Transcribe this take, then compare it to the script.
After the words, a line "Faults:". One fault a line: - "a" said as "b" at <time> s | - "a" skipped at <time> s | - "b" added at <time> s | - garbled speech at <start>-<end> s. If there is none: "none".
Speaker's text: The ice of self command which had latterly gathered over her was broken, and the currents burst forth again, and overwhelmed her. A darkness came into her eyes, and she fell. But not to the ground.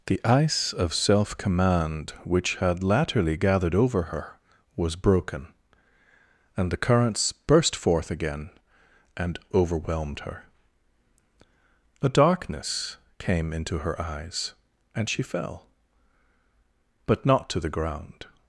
The ice of self command which had latterly gathered over her was broken, and the currents burst forth again, and overwhelmed her. A darkness came into her eyes, and she fell. But not to the ground.
Faults:
none